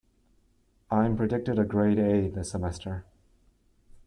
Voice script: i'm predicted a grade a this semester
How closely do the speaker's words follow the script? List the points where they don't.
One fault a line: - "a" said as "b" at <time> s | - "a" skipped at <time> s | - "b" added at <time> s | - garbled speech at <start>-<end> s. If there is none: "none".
none